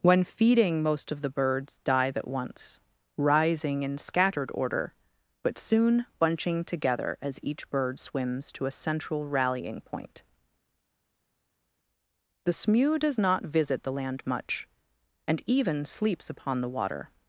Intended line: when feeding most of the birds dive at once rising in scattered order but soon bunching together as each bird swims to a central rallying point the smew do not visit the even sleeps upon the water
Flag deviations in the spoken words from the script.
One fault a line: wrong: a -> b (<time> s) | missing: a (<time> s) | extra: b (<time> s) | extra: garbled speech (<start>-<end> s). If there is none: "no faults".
wrong: do -> does (13.0 s)
extra: land much and (13.9 s)